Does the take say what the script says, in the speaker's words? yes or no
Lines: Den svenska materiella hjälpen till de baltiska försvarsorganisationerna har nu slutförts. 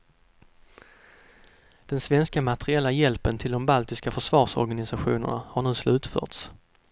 yes